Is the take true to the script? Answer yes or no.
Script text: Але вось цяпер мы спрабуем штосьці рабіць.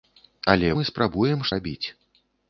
no